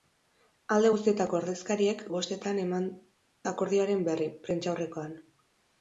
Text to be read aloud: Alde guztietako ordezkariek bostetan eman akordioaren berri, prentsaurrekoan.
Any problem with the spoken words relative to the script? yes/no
no